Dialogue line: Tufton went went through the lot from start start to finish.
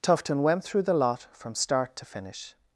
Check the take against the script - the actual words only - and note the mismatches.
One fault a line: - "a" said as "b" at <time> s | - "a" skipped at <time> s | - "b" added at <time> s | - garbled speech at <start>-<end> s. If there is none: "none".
- "went" skipped at 0.6 s
- "start" skipped at 1.9 s